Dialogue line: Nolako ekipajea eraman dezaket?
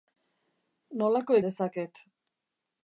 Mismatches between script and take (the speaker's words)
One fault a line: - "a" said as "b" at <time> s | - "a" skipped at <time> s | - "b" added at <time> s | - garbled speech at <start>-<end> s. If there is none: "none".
- "ekipajea eraman" skipped at 1.4 s